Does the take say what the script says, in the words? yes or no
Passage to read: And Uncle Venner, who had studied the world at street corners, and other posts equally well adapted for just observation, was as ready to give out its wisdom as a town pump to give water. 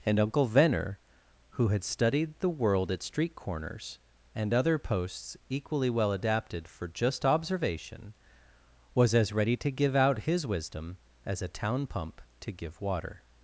no